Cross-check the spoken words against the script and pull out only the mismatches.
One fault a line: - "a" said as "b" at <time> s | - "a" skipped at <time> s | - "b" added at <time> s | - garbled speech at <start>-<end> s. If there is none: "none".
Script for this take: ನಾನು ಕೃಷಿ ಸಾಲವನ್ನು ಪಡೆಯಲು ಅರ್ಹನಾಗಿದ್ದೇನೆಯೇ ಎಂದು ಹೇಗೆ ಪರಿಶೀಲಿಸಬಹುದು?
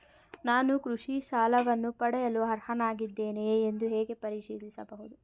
none